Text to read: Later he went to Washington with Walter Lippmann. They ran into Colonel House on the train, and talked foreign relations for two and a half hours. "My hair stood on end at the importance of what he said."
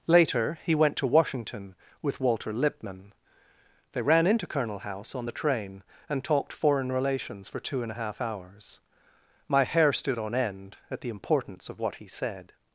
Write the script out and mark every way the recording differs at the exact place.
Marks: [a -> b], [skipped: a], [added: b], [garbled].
Later he went to Washington with Walter Lippmann. They ran into Colonel House on the train, and talked foreign relations for two and a half hours. "My hair stood on end at the importance of what he said."